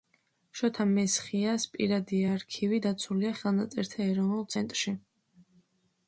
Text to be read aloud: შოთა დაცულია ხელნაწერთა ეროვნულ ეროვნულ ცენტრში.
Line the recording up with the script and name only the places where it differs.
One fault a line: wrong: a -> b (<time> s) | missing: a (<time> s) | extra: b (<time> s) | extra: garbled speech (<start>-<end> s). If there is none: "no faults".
extra: მესხიას პირადი არქივი (0.9 s)
missing: ეროვნულ (4.5 s)